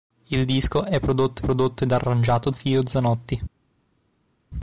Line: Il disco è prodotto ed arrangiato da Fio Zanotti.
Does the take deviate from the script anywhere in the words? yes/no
yes